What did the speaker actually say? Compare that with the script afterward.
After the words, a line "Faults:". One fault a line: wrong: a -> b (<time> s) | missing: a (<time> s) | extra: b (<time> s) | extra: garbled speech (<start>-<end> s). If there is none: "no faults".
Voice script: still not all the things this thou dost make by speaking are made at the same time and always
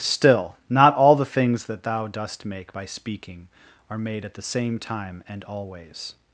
still not all the things that thou dost make by speaking are made at the same time and always
Faults:
wrong: this -> that (1.6 s)